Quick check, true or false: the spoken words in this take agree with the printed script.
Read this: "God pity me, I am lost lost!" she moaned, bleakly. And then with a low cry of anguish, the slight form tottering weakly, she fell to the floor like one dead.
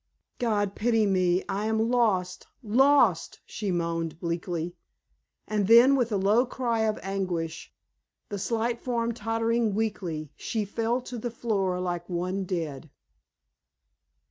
true